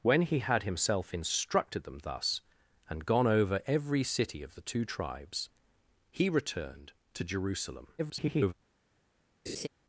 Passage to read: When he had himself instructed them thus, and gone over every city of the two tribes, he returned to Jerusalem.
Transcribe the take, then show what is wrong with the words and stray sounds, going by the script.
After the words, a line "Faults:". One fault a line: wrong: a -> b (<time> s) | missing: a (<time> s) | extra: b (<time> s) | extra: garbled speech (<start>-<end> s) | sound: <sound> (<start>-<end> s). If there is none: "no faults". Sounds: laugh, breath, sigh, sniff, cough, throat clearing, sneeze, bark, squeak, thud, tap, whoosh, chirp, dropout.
When he had himself instructed them thus, and gone over every city of the two tribes, he returned to Jerusalem. [garbled]
Faults:
extra: garbled speech (8.0-8.5 s)
sound: laugh (9.5-9.7 s)